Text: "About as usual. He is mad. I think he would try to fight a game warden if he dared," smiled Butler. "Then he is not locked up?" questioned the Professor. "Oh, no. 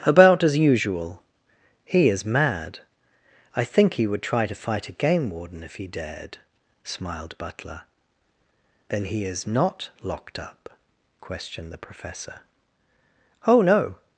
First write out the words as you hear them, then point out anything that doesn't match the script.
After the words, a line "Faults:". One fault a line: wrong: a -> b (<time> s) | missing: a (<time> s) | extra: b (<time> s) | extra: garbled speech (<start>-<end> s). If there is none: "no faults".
"About as usual. He is mad. I think he would try to fight a game warden if he dared," smiled Butler. "Then he is not locked up?" questioned the Professor. "Oh, no.
Faults:
no faults